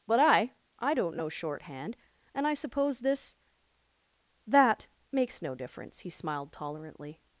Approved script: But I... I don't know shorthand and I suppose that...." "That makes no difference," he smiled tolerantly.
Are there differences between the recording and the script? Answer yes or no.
yes